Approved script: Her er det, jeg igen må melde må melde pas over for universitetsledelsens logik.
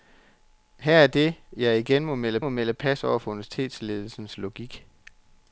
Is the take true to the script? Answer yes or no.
yes